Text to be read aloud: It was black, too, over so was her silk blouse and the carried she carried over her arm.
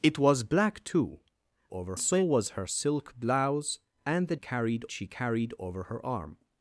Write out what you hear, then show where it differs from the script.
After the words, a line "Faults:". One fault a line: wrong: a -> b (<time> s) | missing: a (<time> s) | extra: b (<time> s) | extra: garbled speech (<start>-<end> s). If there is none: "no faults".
It was black, too, over so was her silk blouse and the carried she carried over her arm.
Faults:
no faults